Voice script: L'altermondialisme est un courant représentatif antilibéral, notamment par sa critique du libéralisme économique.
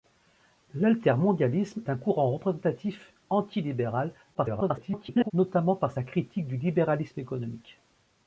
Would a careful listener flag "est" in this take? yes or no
yes